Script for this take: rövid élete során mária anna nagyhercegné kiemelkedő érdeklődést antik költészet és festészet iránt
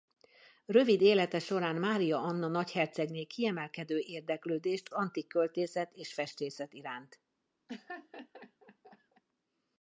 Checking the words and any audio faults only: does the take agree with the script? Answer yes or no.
no